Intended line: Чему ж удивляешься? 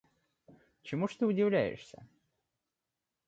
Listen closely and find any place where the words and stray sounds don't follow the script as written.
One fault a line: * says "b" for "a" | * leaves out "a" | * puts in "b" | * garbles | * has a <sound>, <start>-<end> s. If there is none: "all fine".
* puts in "ты"